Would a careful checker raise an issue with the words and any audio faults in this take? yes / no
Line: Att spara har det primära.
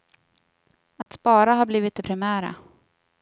yes